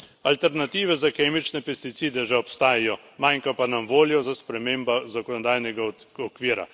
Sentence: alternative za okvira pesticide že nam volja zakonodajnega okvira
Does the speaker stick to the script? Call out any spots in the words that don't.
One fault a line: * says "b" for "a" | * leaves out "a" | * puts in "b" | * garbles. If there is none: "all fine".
* says "kemične" for "okvira"
* puts in "obstajajo manjka pa"
* puts in "za spremembo"